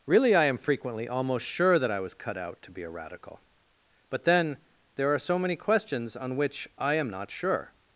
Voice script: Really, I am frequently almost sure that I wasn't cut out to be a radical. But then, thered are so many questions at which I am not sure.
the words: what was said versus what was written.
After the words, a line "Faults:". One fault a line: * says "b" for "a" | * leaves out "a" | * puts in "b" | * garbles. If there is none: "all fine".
Really, I am frequently almost sure that I was cut out to be a radical. But then, there are so many questions on which I am not sure.
Faults:
* says "was" for "wasn't"
* says "there" for "thered"
* says "on" for "at"